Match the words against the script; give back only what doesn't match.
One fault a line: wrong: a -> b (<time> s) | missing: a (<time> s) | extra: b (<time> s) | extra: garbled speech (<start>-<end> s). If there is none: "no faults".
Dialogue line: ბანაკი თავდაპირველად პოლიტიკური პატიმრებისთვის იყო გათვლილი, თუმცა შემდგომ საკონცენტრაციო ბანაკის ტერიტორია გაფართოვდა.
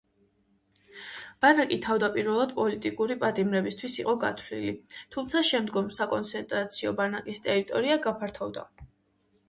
no faults